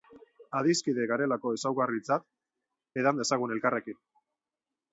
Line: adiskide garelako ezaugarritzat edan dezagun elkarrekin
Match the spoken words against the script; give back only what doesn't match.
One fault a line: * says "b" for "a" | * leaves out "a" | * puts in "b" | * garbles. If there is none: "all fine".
all fine